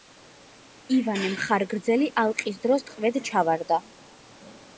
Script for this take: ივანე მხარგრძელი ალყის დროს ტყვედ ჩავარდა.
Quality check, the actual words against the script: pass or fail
pass